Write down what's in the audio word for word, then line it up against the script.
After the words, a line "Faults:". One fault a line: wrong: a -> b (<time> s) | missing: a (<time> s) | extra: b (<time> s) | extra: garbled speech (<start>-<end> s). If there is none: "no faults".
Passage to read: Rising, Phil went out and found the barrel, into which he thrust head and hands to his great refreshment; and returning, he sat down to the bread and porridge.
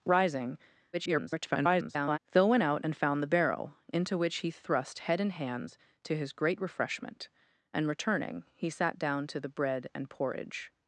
Rising, [garbled] Phil went out and found the barrel, into which he thrust head and hands to his great refreshment; and returning, he sat down to the bread and porridge.
Faults:
extra: garbled speech (0.9-2.2 s)